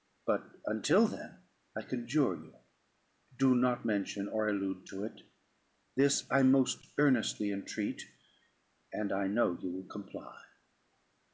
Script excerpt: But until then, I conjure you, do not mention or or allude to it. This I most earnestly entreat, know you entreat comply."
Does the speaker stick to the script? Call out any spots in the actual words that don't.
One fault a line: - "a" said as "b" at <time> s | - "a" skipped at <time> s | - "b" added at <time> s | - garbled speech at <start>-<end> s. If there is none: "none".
- "or" skipped at 4.5 s
- "and I" added at 8.9 s
- "entreat" said as "will" at 9.7 s